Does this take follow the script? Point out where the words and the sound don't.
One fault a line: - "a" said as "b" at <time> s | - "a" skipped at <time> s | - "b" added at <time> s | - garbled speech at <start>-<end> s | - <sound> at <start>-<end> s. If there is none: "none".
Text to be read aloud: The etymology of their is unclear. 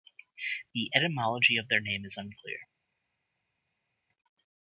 - "name" added at 1.8 s